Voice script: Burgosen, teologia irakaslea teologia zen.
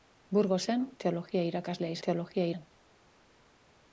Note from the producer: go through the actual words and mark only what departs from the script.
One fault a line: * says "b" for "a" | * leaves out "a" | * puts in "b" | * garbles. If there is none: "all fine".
all fine